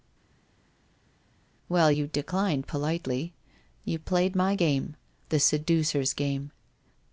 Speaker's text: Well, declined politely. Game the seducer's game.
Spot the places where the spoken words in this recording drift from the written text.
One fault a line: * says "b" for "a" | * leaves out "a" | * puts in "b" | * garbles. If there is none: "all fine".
* puts in "you"
* puts in "You played my"